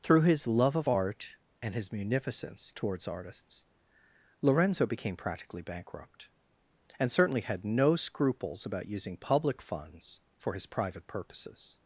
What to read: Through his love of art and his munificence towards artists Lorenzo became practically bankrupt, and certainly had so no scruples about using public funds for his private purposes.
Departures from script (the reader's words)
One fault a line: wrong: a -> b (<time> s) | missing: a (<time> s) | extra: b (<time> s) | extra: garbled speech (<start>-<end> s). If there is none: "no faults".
missing: so (7.6 s)